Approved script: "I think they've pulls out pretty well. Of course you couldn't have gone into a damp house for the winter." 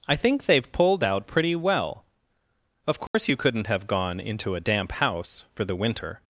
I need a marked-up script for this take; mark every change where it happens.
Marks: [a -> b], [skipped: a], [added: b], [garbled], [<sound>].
"I think they've [pulls -> pulled] out pretty well. Of course [dropout] you couldn't have gone into a damp house for the winter."